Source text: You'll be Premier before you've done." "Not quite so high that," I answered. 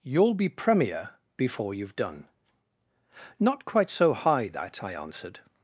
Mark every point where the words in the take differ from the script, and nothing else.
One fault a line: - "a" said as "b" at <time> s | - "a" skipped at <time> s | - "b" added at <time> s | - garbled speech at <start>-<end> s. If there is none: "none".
none